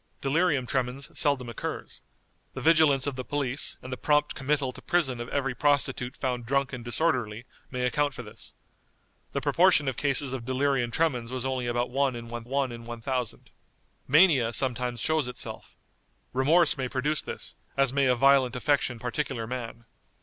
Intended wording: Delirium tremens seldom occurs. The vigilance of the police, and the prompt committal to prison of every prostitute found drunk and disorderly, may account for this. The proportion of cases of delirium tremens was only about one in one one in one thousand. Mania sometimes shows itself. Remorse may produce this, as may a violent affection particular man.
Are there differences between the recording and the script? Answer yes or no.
no